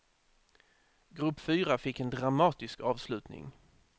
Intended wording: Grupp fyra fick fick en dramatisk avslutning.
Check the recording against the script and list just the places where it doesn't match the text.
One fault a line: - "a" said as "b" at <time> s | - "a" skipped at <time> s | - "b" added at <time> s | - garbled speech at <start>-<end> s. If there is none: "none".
- "fick" skipped at 2.0 s